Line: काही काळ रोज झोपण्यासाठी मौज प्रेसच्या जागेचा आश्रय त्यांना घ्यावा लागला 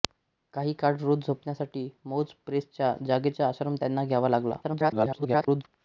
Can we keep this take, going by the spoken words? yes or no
no